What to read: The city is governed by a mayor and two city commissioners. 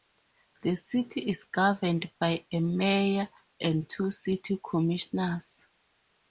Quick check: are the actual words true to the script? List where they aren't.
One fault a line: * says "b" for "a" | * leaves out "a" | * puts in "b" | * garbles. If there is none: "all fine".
all fine